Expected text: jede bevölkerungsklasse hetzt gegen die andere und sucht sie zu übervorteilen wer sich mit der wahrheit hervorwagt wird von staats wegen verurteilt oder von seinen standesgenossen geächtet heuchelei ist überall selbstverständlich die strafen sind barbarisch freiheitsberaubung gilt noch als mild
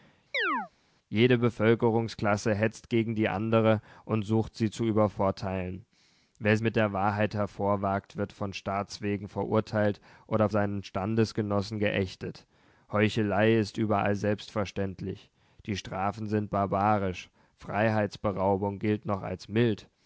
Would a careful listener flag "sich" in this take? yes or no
yes